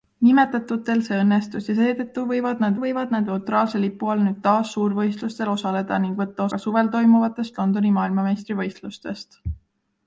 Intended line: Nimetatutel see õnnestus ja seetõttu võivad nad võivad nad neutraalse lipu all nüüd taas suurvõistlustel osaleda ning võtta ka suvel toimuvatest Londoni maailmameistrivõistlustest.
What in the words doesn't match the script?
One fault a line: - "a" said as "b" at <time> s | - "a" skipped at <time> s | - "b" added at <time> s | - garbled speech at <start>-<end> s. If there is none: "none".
none